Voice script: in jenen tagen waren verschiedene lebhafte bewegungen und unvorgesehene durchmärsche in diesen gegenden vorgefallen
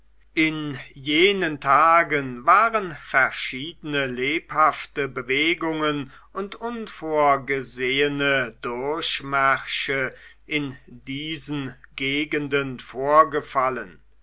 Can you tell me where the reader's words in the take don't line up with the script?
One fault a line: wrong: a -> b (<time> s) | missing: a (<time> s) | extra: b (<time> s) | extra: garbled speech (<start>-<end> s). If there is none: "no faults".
no faults